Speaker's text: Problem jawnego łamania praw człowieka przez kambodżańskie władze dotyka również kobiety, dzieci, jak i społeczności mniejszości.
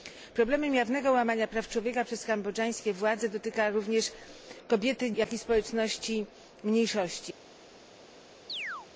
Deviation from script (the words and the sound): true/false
true